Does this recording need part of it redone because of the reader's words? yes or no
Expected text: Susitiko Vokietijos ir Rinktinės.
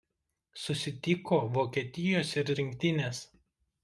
no